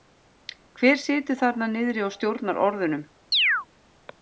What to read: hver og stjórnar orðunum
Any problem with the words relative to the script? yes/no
yes